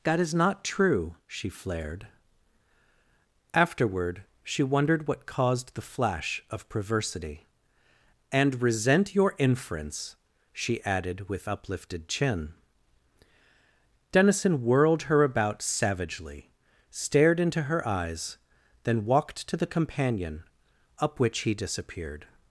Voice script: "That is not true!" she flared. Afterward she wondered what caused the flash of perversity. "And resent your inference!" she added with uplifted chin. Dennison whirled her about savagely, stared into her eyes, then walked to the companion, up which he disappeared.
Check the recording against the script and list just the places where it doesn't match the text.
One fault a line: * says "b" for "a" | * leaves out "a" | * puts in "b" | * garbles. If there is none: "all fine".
all fine